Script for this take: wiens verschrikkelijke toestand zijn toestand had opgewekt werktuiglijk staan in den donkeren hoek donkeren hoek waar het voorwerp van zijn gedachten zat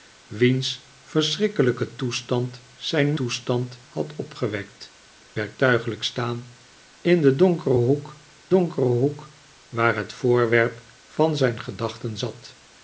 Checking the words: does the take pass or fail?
pass